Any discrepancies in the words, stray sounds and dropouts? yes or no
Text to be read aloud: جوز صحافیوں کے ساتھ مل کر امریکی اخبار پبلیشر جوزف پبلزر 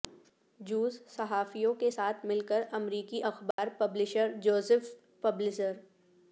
yes